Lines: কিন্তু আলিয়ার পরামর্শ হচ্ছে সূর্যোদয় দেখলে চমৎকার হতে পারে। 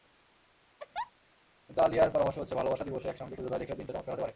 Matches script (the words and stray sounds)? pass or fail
fail